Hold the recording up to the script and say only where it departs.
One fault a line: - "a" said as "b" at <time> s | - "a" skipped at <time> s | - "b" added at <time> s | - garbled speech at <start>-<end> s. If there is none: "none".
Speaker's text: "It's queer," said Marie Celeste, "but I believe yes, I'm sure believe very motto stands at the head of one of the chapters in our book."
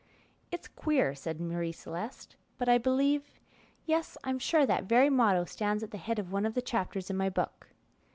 - "believe" said as "that" at 4.7 s
- "our" said as "my" at 7.2 s